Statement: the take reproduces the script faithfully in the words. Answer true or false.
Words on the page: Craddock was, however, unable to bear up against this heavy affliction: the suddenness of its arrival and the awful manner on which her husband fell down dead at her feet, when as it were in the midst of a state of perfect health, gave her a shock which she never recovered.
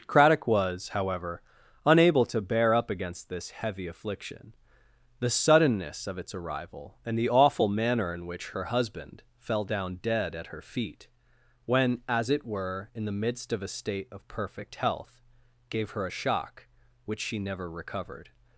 false